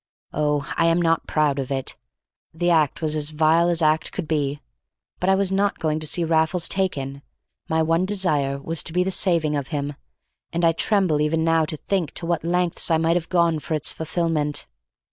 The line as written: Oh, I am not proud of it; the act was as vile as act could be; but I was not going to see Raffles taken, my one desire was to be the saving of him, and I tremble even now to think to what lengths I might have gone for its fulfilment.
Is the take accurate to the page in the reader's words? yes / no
yes